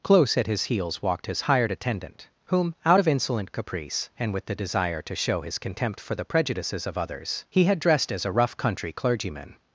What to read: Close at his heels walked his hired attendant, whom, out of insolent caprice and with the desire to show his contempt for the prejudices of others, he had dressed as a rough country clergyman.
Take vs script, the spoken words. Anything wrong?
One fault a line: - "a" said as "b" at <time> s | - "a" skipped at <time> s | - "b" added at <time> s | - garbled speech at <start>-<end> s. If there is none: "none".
none